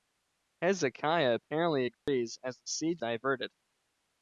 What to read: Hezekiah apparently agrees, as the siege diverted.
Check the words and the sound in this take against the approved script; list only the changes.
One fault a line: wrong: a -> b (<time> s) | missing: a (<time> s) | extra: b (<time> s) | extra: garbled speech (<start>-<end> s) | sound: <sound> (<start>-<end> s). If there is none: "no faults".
sound: dropout (1.9-2.1 s)